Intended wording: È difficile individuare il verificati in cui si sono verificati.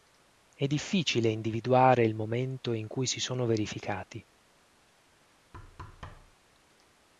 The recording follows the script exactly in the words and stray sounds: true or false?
false